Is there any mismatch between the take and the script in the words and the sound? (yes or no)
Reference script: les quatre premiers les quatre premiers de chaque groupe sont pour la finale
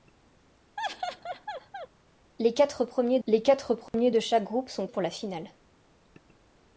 yes